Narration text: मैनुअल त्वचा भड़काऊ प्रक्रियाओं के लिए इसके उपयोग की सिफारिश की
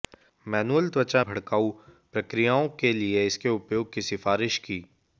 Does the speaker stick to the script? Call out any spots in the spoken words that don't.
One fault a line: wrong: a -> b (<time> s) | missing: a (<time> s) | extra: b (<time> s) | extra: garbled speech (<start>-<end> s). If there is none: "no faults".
no faults